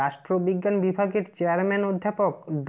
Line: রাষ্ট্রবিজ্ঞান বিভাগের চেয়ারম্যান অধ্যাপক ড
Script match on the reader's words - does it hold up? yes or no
yes